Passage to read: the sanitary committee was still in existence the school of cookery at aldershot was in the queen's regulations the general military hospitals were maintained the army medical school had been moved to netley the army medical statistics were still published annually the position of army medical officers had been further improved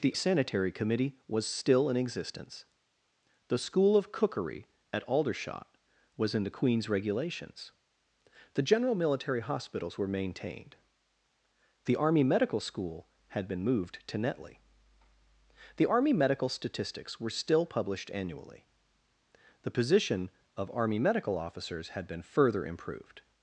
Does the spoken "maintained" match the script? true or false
true